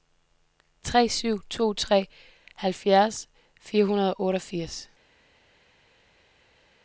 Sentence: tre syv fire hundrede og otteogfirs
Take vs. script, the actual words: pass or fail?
fail